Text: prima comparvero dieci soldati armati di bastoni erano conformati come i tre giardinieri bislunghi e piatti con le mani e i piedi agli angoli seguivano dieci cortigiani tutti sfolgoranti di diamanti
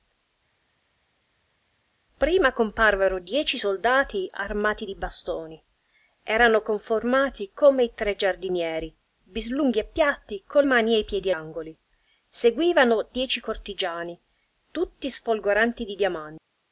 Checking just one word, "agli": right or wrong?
wrong